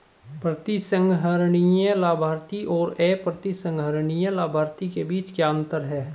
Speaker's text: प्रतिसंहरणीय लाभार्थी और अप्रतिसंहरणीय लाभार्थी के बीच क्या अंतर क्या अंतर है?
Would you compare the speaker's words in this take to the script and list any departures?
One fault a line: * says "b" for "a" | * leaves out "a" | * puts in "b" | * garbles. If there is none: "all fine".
* leaves out "क्या अंतर"